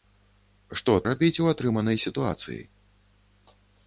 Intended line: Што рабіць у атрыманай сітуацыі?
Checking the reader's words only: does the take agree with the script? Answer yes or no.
yes